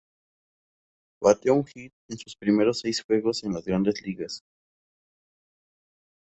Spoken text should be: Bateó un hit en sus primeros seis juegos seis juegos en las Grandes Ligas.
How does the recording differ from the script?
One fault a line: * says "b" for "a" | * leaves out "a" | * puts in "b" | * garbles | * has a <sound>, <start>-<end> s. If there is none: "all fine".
* leaves out "seis juegos"